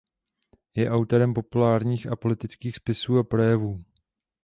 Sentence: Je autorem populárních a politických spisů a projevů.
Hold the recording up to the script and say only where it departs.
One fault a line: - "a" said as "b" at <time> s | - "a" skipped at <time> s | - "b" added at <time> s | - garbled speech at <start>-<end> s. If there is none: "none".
none